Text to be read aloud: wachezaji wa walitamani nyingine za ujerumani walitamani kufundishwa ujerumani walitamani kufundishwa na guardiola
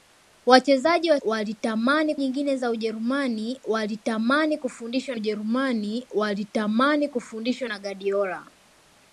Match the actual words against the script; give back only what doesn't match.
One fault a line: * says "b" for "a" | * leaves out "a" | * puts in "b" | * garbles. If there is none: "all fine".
all fine